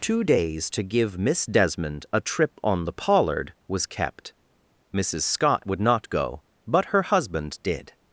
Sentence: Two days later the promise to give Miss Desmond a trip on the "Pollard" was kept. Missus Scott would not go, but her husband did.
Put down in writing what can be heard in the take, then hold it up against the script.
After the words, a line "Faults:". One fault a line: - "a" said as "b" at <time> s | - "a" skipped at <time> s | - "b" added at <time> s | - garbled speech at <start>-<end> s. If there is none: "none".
Two days to give Miss Desmond a trip on the "Pollard" was kept. Missus Scott would not go, but her husband did.
Faults:
- "later the promise" skipped at 0.7 s